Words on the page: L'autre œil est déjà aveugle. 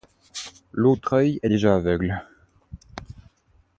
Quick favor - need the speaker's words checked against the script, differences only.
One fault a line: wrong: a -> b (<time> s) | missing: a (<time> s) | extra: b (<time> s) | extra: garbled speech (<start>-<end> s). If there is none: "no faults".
no faults